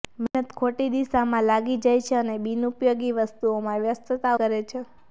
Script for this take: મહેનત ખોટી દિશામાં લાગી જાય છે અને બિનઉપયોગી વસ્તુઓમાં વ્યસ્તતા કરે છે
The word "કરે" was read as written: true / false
true